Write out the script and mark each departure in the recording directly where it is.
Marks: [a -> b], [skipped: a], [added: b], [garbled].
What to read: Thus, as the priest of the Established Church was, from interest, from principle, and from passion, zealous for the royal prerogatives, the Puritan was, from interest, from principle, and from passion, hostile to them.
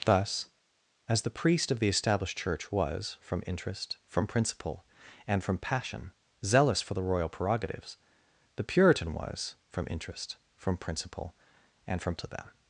Thus, as the priest of the Established Church was, from interest, from principle, and from passion, zealous for the royal prerogatives, the Puritan was, from interest, from principle, and from [skipped: passion, hostile] to them.